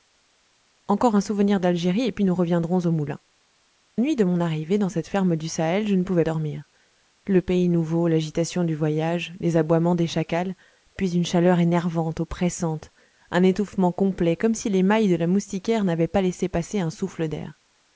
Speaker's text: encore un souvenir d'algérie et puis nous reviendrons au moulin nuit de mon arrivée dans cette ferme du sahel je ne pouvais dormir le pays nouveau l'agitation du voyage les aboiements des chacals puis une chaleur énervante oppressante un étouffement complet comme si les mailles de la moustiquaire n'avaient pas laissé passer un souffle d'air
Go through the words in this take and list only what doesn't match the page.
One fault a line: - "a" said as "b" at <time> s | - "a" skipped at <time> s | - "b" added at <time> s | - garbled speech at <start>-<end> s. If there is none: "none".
none